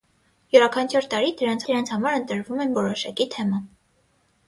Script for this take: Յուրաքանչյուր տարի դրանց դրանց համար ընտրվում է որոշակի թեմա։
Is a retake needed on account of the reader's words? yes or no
no